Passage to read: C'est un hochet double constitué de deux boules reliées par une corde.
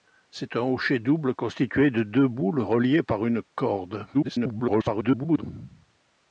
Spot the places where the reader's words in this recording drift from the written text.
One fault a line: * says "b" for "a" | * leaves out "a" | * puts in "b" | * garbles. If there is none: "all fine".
* garbles